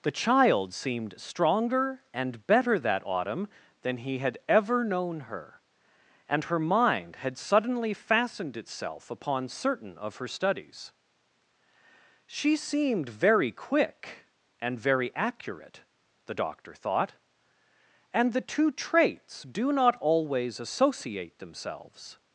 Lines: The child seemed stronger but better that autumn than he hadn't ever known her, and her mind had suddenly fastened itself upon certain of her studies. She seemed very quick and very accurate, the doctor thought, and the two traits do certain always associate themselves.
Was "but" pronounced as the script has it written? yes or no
no